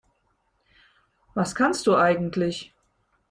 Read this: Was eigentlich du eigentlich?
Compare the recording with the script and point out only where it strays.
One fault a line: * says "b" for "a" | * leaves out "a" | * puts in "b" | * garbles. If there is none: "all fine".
* says "kannst" for "eigentlich"